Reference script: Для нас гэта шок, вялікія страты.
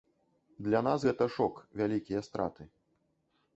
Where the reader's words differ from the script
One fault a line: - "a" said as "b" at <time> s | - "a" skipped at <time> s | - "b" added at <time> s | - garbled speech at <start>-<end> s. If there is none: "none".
none